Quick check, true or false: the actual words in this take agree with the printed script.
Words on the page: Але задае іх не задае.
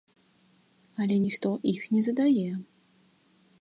false